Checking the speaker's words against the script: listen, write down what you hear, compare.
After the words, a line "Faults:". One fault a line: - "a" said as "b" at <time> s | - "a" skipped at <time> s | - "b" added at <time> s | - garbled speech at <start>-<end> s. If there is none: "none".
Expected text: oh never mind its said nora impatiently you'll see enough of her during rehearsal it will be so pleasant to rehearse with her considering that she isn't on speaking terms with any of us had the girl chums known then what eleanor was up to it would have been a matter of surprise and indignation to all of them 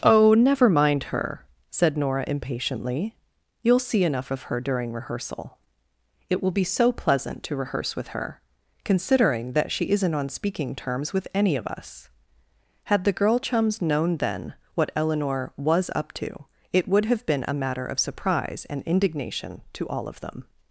oh never mind her said nora impatiently you'll see enough of her during rehearsal it will be so pleasant to rehearse with her considering that she isn't on speaking terms with any of us had the girl chums known then what eleanor was up to it would have been a matter of surprise and indignation to all of them
Faults:
- "its" said as "her" at 1.1 s